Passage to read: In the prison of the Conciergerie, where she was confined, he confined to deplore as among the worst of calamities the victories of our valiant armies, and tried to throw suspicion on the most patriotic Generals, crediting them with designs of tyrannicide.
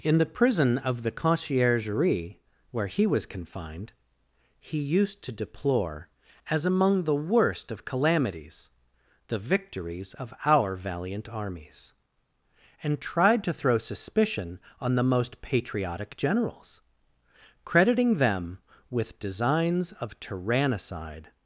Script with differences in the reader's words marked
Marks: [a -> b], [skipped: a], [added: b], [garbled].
In the prison of the Conciergerie, where [she -> he] was confined, he [confined -> used] to deplore as among the worst of calamities the victories of our valiant armies, and tried to throw suspicion on the most patriotic Generals, crediting them with designs of tyrannicide.